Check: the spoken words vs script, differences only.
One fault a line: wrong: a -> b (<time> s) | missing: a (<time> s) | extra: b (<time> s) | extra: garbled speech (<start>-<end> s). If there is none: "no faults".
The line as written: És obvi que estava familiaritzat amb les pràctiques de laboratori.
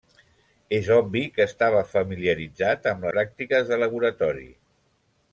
missing: les (3.1 s)